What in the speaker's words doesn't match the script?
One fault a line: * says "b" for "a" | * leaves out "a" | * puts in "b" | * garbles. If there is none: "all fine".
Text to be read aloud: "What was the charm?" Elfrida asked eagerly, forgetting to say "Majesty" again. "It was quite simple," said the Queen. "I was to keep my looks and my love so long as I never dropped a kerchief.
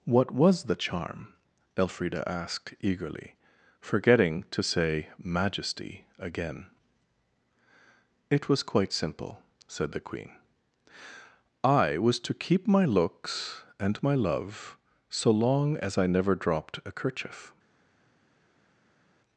all fine